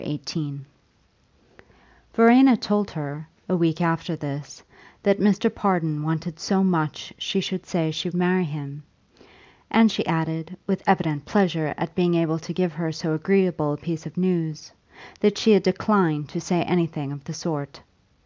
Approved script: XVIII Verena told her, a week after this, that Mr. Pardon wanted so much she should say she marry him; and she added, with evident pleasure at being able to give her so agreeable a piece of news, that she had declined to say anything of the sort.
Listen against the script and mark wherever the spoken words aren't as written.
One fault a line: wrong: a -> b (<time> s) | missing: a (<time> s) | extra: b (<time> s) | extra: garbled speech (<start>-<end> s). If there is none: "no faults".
no faults